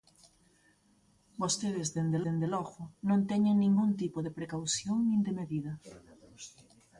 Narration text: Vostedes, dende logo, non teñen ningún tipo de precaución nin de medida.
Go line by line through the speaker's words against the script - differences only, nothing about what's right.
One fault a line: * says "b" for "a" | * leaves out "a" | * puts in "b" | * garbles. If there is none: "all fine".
* puts in "dende"